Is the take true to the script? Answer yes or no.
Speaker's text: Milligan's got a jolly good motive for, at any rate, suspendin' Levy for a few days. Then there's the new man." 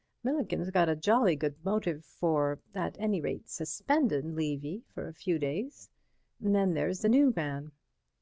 yes